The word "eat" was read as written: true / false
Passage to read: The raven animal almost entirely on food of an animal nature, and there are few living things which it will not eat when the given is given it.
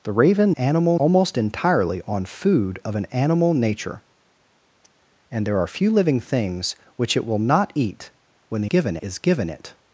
true